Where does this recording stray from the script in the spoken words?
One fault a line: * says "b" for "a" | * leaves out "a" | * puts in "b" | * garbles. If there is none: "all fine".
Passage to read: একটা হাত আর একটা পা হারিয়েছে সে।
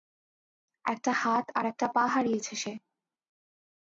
all fine